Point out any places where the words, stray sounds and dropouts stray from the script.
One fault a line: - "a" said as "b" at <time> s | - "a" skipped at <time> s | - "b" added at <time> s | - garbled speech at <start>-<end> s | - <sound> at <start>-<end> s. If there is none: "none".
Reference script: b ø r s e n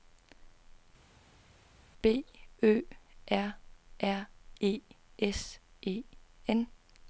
- "r e" added at 4.0 s